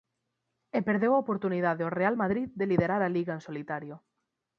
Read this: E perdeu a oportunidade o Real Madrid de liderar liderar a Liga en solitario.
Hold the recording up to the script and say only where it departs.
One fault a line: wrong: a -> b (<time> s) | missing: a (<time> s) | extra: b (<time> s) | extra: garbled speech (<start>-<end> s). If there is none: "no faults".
missing: liderar (3.0 s)